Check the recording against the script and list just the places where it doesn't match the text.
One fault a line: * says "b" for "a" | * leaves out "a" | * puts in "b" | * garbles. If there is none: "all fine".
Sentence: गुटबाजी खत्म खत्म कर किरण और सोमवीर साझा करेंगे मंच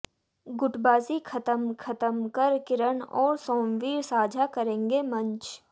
all fine